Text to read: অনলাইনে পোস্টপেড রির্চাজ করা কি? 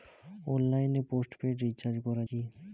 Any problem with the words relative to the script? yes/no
no